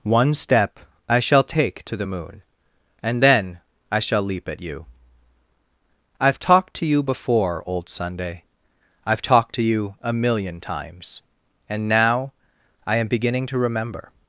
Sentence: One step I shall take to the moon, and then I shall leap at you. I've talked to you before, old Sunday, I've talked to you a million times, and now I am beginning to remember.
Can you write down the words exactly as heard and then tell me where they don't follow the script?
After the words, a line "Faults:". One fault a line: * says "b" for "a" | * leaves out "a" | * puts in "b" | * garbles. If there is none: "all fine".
One step I shall take to the moon, and then I shall leap at you. I've talked to you before, old Sunday, I've talked to you a million times, and now I am beginning to remember.
Faults:
all fine